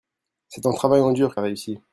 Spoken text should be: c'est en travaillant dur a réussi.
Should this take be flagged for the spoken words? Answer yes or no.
no